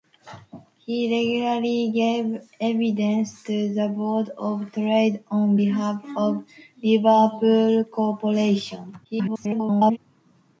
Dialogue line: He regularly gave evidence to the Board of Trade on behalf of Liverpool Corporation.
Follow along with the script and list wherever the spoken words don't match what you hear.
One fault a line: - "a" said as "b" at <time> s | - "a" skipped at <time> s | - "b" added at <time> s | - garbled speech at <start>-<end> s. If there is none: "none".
- garbled speech at 9.0-10.0 s